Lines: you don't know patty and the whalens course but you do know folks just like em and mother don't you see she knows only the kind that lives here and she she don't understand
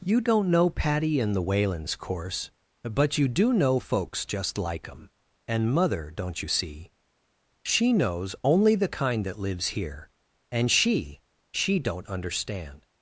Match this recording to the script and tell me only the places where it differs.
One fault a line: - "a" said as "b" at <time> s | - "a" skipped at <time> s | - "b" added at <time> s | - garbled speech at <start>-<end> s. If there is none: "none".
none